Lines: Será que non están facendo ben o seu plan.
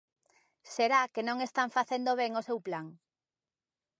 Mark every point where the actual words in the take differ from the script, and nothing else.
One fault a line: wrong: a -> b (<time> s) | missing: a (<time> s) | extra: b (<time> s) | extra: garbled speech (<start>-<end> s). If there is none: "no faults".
no faults